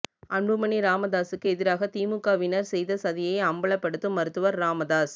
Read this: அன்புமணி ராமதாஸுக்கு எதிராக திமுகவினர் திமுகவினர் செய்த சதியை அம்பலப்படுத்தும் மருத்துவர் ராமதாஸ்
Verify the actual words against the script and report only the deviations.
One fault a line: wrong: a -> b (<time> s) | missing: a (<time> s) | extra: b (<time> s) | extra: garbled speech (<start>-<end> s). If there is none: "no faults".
missing: திமுகவினர் (2.7 s)